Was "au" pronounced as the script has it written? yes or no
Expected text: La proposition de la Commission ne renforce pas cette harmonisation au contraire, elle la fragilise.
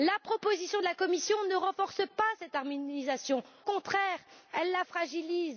no